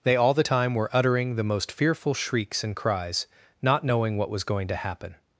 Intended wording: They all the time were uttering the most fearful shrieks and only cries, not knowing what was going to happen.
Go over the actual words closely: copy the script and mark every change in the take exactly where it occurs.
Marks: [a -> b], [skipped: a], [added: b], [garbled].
They all the time were uttering the most fearful shrieks and [skipped: only] cries, not knowing what was going to happen.